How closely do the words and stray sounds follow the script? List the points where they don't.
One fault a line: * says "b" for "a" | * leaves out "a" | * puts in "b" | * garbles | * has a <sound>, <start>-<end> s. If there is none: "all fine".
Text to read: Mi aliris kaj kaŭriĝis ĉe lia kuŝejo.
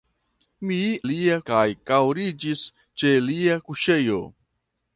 * says "lia" for "aliris"